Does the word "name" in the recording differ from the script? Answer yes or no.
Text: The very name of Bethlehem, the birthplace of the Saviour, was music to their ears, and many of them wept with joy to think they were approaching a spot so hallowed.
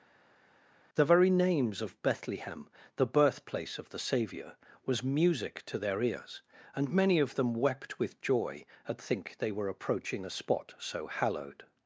yes